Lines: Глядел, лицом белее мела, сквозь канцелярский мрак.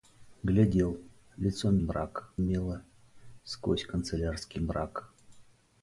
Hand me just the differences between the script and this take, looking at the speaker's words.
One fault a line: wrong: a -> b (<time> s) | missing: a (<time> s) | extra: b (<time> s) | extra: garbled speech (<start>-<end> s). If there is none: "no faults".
wrong: белее -> мрак (1.8 s)